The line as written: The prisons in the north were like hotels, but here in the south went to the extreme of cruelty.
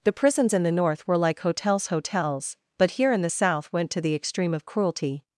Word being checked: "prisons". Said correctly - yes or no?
yes